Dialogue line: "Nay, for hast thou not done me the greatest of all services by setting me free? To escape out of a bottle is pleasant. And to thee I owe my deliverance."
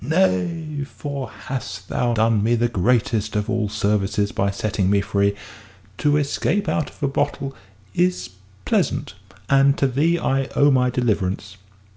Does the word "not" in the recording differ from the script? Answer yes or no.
yes